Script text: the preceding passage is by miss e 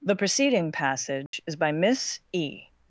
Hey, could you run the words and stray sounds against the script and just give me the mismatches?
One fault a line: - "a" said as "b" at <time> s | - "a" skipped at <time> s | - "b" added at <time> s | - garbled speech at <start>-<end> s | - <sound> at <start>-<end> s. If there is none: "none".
- dropout at 1.3-1.3 s